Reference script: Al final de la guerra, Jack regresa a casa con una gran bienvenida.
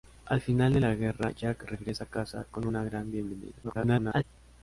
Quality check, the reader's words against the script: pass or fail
fail